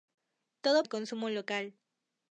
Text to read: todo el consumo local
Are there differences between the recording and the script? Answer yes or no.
no